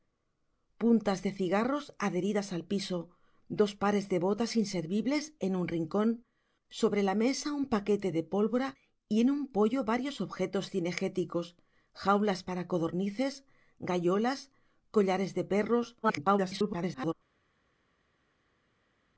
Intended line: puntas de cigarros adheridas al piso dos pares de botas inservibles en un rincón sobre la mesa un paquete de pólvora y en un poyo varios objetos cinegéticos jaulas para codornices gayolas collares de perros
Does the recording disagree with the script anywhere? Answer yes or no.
yes